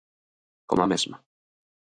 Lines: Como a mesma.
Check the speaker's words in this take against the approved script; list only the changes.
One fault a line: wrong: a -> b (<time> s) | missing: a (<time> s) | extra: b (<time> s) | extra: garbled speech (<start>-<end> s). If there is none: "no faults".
no faults